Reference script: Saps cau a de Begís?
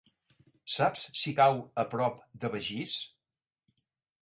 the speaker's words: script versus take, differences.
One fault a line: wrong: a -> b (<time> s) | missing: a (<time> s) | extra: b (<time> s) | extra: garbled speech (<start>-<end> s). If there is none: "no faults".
extra: si (1.2 s)
extra: prop (2.0 s)